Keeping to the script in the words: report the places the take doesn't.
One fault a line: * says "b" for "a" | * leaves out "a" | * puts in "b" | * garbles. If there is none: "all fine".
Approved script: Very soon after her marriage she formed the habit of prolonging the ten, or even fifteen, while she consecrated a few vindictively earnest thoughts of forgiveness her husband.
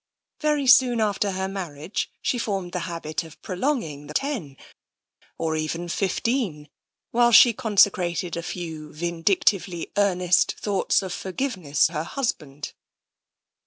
all fine